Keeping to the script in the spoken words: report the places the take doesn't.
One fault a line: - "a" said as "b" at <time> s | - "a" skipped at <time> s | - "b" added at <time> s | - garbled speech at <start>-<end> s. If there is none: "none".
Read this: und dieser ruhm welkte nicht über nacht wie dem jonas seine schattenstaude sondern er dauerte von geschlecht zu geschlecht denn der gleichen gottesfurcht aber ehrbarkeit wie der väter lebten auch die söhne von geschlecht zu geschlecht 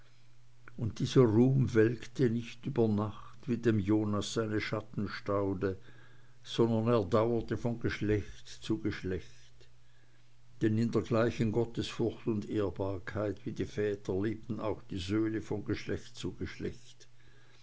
- "in" added at 10.8 s
- "aber" said as "und" at 12.3 s
- "der" said as "die" at 13.5 s